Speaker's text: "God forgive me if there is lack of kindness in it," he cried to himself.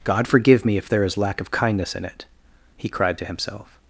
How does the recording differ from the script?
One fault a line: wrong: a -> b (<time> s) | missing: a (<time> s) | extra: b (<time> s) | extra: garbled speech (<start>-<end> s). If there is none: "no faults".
no faults